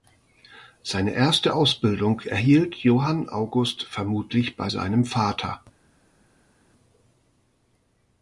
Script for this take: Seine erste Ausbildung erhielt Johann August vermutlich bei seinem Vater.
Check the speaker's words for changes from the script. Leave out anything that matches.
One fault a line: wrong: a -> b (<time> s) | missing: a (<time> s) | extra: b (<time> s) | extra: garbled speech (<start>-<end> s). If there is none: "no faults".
no faults